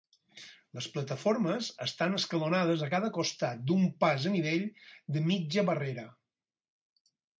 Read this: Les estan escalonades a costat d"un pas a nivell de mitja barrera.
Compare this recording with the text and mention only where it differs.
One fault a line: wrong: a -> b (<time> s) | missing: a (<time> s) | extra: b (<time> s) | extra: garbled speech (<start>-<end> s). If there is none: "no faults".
extra: plataformes (0.9 s)
extra: cada (2.9 s)